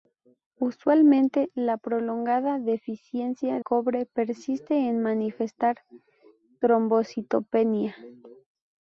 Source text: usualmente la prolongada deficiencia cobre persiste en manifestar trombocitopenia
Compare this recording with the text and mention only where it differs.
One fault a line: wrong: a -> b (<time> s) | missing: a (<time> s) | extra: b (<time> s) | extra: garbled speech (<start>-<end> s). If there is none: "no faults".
no faults